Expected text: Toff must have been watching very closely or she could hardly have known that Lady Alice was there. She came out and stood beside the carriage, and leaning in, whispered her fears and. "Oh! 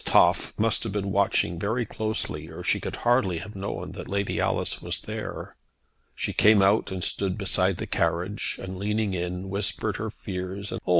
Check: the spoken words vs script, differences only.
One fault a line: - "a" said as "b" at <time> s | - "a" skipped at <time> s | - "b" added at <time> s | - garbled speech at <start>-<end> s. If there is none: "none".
none